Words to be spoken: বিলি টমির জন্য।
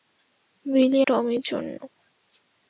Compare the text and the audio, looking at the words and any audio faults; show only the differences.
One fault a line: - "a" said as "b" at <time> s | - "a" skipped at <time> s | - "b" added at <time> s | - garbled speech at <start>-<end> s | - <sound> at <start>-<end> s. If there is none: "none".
none